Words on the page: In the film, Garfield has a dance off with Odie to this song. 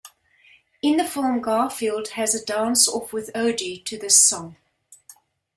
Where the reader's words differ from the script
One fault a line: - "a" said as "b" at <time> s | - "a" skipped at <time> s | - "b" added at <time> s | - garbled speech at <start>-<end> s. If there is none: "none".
none